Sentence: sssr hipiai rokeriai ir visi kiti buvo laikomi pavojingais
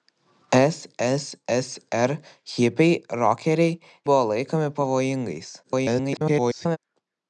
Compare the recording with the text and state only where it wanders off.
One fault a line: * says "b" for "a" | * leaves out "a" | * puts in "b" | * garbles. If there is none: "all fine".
* leaves out "ir visi kiti"
* garbles